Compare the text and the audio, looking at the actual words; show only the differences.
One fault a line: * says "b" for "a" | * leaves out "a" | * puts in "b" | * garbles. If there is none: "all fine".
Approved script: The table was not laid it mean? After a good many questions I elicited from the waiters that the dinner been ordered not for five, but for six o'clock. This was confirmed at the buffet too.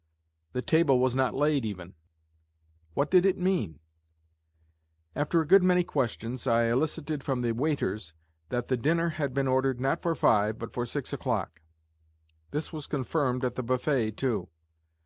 * puts in "even What did"
* puts in "had"